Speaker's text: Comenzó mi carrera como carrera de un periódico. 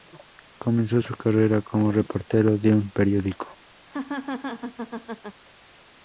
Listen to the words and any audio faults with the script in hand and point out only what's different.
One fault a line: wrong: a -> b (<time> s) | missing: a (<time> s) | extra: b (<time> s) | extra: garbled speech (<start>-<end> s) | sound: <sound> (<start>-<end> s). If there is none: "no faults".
wrong: mi -> su (1.0 s)
wrong: carrera -> reportero (1.9 s)
sound: laugh (3.9-5.4 s)